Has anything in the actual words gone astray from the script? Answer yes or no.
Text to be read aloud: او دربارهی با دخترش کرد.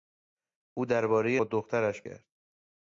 no